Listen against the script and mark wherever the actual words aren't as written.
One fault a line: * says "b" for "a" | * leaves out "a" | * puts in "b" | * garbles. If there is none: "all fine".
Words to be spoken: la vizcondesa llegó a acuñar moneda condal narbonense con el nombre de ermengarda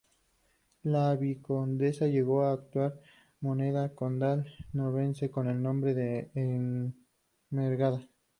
all fine